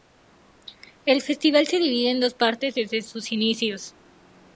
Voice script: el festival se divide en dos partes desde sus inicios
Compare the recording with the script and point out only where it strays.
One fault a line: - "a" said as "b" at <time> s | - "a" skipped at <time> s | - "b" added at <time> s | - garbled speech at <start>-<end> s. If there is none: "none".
none